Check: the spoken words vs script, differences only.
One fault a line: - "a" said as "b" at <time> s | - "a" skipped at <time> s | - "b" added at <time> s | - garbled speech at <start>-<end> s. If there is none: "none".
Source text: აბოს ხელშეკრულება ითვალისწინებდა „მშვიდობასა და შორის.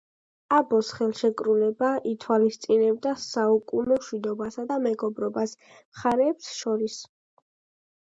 - "საუკუნო" added at 3.3 s
- "მეგობრობას მხარეებს" added at 4.9 s